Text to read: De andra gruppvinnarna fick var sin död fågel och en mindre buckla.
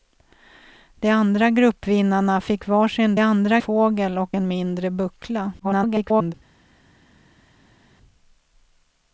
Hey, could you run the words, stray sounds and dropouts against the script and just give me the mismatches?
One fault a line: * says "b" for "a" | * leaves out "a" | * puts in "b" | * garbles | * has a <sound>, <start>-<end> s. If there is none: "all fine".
* says "andra" for "död"
* garbles